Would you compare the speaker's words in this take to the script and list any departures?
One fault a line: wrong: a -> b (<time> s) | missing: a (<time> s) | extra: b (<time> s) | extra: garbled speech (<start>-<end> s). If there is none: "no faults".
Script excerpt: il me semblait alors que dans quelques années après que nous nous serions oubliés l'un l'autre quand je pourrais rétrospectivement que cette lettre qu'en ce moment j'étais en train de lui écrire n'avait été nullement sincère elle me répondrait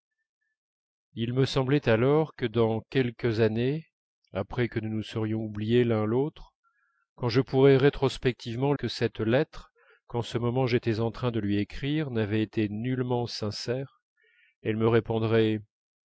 no faults